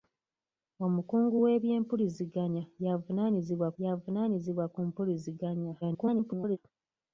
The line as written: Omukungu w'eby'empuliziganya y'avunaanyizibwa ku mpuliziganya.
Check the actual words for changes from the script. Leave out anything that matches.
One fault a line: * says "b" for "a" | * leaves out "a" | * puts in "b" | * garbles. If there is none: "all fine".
* puts in "y'avunaanyizibwa"
* garbles